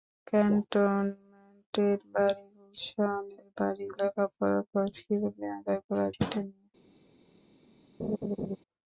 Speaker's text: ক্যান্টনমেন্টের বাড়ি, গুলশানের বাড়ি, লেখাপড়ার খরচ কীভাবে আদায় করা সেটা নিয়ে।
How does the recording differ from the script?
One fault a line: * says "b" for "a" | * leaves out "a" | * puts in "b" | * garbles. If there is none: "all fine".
all fine